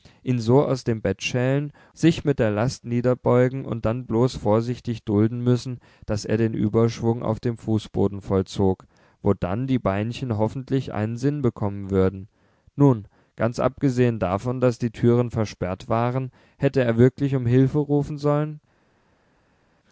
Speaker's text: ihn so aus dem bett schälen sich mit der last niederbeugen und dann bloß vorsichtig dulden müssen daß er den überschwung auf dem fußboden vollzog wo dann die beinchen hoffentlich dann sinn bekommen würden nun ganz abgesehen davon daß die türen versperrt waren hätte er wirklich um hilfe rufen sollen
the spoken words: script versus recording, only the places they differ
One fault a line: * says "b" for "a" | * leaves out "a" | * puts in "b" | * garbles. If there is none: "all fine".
* says "einen" for "dann"